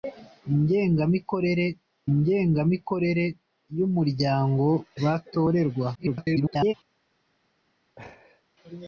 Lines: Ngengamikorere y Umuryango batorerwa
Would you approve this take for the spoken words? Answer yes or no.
no